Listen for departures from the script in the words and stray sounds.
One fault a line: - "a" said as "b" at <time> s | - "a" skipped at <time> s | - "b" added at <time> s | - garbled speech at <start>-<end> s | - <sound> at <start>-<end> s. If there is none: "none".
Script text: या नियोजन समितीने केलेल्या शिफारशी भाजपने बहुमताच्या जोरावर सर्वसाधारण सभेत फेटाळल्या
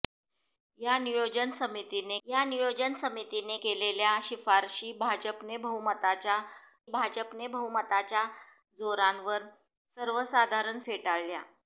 - "या नियोजन समितीने" added at 2.3 s
- "भाजपने बहुमताच्या" added at 6.9 s
- "सभेत" skipped at 10.8 s